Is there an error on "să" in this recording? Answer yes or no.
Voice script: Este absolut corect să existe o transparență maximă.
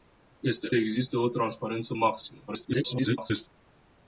yes